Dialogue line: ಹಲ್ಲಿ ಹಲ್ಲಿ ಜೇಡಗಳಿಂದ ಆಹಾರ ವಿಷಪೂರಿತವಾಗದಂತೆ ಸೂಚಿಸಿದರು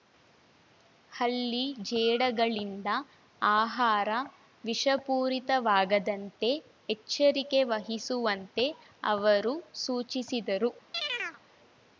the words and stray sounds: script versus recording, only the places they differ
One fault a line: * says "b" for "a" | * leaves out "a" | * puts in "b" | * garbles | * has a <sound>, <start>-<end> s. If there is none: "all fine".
* leaves out "ಹಲ್ಲಿ"
* puts in "ಎಚ್ಚರಿಕೆ ವಹಿಸುವಂತೆ ಅವರು"
* has a chirp, 10.9-11.4 s